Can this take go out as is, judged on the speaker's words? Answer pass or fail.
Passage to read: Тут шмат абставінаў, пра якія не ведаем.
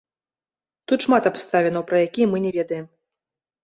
fail